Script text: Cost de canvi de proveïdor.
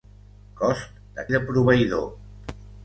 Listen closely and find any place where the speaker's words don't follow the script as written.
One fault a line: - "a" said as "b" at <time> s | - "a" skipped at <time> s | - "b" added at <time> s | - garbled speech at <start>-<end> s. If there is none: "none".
- "canvi" skipped at 1.2 s